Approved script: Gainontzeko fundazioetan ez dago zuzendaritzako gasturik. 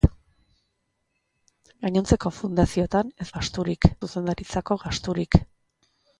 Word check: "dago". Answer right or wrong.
wrong